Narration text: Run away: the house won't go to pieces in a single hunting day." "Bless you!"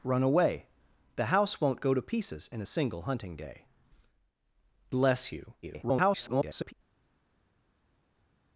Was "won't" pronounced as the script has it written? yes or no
yes